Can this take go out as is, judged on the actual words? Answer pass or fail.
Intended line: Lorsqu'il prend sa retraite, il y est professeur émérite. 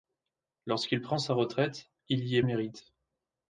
fail